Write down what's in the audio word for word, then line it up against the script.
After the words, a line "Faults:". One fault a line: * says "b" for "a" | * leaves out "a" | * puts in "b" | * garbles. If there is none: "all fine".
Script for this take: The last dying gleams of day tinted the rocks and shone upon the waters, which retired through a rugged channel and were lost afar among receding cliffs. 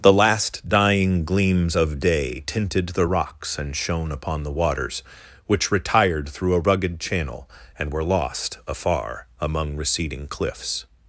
The last dying gleams of day tinted the rocks and shone upon the waters, which retired through a rugged channel and were lost afar among receding cliffs.
Faults:
all fine